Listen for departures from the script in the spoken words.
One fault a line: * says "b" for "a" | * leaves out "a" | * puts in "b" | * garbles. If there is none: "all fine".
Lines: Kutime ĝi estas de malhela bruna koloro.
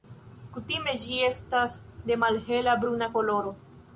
all fine